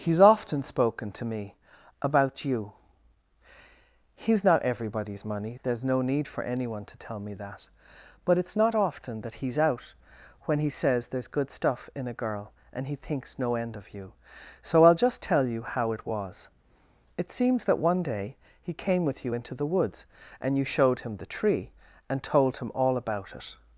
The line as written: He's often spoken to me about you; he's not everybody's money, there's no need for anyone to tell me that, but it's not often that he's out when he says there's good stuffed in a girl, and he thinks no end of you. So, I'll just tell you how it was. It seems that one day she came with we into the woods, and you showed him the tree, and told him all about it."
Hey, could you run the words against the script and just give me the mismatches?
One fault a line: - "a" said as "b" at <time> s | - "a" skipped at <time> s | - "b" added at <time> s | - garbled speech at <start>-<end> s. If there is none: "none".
- "stuffed" said as "stuff" at 11.5 s
- "she" said as "he" at 18.6 s
- "we" said as "you" at 19.2 s